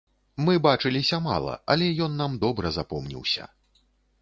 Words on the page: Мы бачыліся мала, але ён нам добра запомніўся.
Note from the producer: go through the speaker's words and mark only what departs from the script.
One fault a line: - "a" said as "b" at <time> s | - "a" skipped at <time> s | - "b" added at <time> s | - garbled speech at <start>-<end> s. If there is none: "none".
none